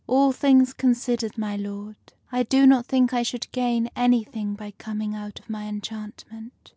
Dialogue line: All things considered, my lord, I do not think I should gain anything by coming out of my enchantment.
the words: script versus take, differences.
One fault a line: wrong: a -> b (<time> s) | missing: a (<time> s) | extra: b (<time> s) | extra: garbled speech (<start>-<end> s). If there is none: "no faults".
no faults